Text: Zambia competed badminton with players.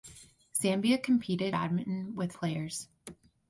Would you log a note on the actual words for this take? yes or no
no